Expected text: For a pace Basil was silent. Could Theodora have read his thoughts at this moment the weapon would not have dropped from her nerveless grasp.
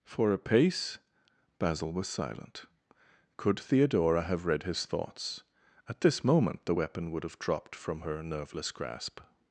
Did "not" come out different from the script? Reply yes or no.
yes